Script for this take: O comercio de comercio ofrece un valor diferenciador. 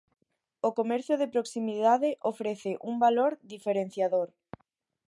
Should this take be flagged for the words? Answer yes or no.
yes